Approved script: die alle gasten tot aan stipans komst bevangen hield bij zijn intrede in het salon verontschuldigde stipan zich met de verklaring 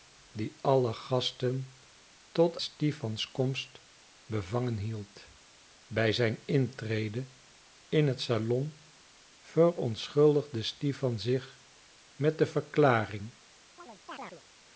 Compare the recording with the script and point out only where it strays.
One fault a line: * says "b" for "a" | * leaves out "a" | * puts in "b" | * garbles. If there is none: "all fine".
* leaves out "aan"